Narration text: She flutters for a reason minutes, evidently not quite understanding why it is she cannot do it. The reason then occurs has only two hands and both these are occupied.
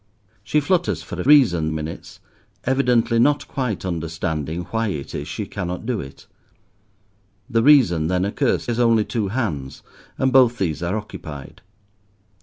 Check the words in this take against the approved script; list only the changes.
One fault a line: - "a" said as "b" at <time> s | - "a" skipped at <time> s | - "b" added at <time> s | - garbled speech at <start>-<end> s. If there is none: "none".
none